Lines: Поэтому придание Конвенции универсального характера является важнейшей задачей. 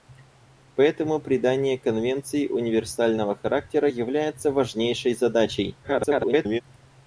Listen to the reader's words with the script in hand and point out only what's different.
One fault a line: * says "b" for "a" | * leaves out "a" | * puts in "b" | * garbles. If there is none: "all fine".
* garbles